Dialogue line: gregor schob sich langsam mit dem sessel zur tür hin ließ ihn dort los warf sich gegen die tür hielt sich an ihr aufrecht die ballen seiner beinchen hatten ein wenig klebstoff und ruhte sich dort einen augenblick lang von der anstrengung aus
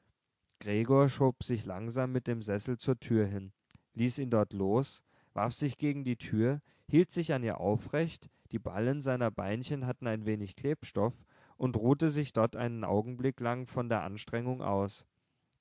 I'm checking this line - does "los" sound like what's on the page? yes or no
yes